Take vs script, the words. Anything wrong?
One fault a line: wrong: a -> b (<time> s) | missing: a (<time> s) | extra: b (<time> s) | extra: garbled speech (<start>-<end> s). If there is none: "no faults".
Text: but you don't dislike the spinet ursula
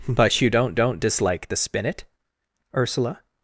extra: don't (0.7 s)